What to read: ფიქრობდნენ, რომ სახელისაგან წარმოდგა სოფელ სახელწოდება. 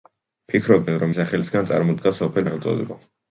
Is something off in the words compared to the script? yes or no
no